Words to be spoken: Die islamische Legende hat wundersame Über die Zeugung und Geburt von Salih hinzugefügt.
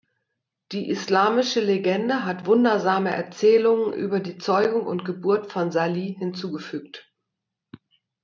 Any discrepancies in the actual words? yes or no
yes